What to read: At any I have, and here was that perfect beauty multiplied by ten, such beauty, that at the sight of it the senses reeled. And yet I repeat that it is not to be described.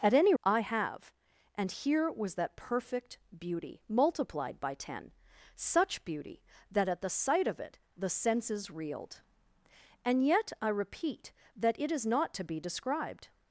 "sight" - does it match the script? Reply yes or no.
yes